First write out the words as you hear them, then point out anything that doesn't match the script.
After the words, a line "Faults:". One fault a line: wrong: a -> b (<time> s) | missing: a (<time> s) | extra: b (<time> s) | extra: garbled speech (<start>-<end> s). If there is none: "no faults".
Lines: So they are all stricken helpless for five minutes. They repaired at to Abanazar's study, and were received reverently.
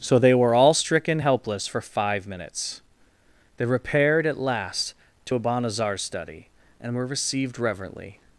So they were all stricken helpless for five minutes. They repaired at last to Abanazar's study, and were received reverently.
Faults:
wrong: are -> were (0.3 s)
extra: last (4.4 s)